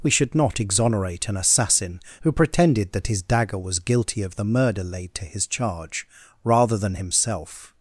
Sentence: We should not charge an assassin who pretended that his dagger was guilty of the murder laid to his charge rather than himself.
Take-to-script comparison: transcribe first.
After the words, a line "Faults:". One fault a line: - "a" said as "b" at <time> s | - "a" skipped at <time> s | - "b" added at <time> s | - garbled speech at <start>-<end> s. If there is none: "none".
We should not exonerate an assassin who pretended that his dagger was guilty of the murder laid to his charge rather than himself.
Faults:
- "charge" said as "exonerate" at 0.6 s